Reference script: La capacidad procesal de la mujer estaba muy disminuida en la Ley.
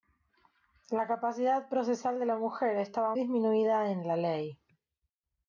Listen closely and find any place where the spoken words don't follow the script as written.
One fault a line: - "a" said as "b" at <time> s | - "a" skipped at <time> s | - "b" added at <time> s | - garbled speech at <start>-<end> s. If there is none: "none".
- "muy" skipped at 3.1 s